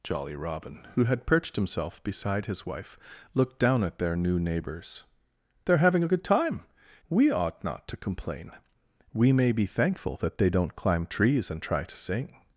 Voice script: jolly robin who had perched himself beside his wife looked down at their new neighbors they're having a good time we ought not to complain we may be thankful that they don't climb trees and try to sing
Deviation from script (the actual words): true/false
false